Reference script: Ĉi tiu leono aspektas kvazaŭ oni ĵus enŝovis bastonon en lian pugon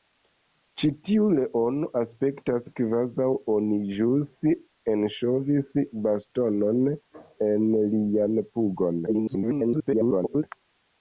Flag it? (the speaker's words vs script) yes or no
yes